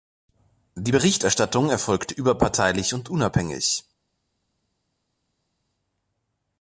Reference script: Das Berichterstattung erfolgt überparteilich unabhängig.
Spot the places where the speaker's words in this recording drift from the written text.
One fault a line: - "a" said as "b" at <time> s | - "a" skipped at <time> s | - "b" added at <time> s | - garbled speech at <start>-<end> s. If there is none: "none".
- "Das" said as "Die" at 0.7 s
- "und" added at 2.9 s